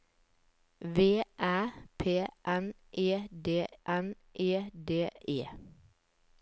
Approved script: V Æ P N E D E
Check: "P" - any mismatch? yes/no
no